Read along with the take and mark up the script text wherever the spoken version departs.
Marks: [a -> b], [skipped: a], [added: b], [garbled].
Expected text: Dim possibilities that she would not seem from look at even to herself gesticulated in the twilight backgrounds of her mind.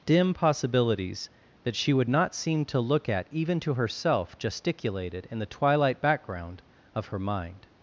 Dim possibilities that she would not seem [from -> to] look at even to herself gesticulated in the twilight [backgrounds -> background] of her mind.